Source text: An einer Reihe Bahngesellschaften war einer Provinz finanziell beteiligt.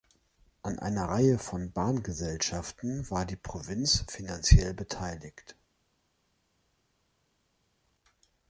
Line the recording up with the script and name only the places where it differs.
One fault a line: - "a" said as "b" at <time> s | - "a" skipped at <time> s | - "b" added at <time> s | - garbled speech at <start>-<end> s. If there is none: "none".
- "von" added at 1.4 s
- "einer" said as "die" at 3.2 s